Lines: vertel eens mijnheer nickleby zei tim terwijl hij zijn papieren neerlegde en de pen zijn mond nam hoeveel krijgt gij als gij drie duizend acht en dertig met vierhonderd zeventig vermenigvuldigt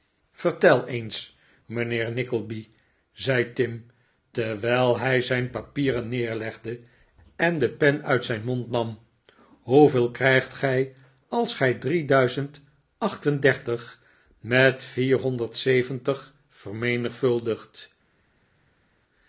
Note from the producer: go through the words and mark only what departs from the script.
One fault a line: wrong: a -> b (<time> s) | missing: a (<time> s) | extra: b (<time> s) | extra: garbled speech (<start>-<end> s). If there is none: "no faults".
extra: uit (8.0 s)